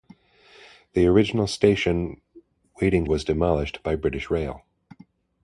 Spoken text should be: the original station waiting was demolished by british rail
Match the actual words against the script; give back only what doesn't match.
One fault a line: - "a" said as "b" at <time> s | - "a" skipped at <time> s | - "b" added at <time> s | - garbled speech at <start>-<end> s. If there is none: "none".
none